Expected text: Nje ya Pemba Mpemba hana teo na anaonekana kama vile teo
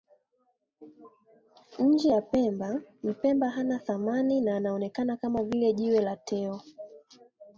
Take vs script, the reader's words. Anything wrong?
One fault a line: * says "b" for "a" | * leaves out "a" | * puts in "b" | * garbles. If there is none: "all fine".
* says "thamani" for "teo"
* puts in "jiwe la"